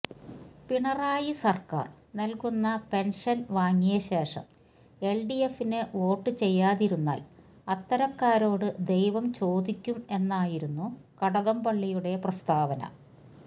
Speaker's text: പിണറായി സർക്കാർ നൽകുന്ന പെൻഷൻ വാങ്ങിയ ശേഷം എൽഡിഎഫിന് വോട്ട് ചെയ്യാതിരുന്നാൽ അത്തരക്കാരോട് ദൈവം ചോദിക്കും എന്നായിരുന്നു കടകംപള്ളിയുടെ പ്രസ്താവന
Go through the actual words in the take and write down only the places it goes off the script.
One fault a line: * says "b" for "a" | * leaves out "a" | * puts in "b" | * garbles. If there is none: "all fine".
all fine